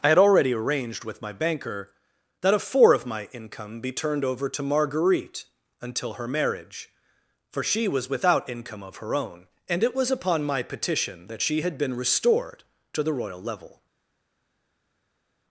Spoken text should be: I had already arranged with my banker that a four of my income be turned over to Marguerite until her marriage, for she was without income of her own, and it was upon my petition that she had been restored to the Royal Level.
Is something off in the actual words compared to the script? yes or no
no